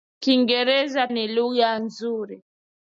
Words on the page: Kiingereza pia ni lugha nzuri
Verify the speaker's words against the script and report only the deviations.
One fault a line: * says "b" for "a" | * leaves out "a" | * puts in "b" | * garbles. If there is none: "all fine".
* leaves out "pia"